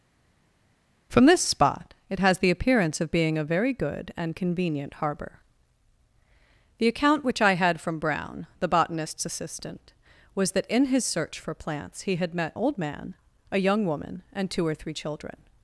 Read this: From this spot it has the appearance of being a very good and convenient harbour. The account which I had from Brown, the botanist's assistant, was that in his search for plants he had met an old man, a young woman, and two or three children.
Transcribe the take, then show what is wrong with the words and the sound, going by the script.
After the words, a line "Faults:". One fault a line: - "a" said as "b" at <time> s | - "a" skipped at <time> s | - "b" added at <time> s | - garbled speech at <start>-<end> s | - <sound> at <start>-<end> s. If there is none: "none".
From this spot it has the appearance of being a very good and convenient harbour. The account which I had from Brown, the botanist's assistant, was that in his search for plants he had met old man, a young woman, and two or three children.
Faults:
- "an" skipped at 12.5 s